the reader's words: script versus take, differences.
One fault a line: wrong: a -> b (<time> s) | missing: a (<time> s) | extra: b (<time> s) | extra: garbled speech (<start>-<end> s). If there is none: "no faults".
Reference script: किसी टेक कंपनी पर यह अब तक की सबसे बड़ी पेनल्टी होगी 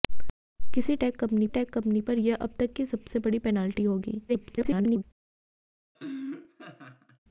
extra: टेक कंपनी (1.5 s)
extra: garbled speech (4.3-5.0 s)